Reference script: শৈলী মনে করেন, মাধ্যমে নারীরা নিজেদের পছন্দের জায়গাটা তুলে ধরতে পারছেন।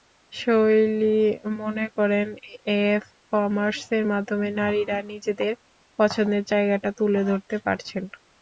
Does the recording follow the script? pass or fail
fail